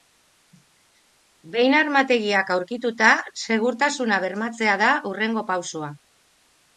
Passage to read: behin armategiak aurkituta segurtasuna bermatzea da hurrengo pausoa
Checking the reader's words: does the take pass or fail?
pass